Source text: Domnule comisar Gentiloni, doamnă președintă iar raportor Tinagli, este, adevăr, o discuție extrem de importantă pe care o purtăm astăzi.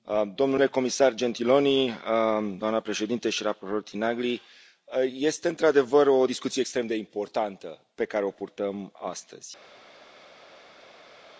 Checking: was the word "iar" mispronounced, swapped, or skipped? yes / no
yes